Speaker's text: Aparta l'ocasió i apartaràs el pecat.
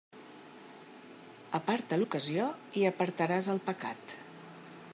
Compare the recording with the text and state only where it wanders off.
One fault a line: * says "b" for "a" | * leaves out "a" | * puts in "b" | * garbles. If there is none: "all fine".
all fine